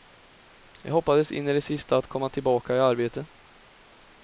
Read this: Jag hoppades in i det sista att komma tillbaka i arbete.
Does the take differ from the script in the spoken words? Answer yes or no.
no